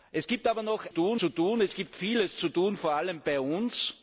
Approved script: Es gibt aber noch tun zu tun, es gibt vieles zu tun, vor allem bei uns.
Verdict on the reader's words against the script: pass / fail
pass